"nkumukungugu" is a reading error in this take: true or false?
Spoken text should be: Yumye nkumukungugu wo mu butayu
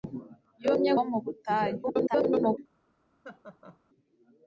true